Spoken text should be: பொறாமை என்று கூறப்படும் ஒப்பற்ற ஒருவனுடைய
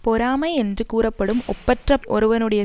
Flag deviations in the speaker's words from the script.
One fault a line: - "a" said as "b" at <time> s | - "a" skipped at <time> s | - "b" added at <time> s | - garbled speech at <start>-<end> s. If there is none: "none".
none